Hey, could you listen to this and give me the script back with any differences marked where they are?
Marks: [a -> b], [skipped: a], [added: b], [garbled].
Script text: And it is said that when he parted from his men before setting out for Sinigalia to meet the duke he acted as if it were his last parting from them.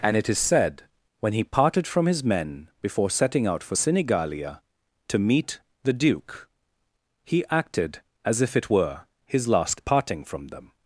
And it is said [skipped: that] when he parted from his men before setting out for Sinigalia to meet the duke he acted as if it were his last parting from them.